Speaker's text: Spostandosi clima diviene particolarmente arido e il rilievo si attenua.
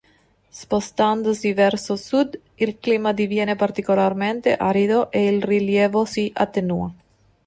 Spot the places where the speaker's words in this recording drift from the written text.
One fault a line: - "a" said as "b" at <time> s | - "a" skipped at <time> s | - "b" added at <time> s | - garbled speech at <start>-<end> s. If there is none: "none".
- "verso sud il" added at 1.5 s